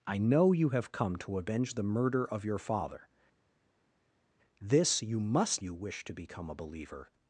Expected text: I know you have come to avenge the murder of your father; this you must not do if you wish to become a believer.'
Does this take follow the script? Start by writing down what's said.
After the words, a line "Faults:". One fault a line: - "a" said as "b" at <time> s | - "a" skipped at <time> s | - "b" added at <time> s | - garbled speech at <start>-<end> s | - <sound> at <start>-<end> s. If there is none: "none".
I know you have come to avenge the murder of your father; this you must you wish to become a believer.'
Faults:
- "not do if" skipped at 5.6 s